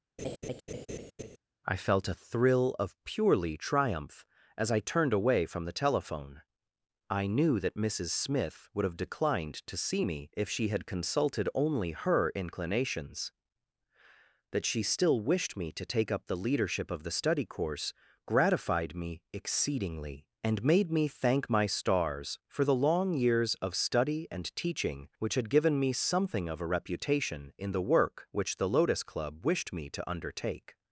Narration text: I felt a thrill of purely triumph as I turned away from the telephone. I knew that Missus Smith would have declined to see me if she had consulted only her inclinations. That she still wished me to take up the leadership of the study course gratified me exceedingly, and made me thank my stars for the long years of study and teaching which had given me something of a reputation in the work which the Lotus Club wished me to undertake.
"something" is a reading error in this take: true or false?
false